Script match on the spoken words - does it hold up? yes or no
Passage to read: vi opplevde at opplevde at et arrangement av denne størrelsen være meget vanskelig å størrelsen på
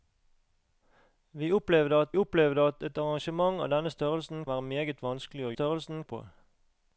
yes